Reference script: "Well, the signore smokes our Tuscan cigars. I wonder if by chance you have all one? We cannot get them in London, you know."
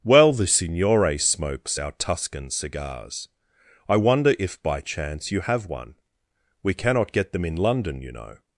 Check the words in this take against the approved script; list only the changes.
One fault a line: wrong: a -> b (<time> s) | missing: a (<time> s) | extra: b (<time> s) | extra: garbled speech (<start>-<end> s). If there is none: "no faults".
missing: all (5.7 s)